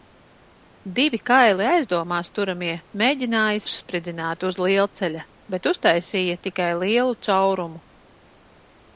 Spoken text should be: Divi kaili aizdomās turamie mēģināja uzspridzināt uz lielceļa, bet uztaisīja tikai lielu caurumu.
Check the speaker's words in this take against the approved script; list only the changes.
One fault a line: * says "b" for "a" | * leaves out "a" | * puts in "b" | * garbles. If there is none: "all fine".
all fine